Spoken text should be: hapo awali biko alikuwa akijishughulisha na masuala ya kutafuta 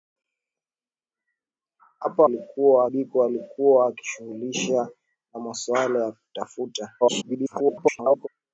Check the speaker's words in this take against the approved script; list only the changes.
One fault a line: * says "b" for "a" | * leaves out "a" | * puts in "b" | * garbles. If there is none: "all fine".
* says "alikuwa" for "awali"
* garbles